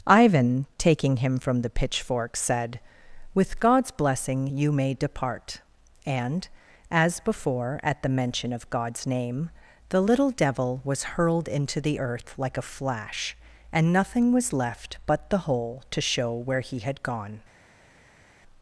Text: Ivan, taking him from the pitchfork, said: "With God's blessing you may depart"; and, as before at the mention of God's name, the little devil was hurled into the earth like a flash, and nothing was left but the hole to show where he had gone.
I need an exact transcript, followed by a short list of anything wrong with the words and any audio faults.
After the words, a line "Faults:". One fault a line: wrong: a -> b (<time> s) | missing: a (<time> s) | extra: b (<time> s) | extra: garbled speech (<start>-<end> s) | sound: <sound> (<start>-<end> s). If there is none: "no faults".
Ivan, taking him from the pitchfork, said: "With God's blessing you may depart"; and, as before at the mention of God's name, the little devil was hurled into the earth like a flash, and nothing was left but the hole to show where he had gone.
Faults:
no faults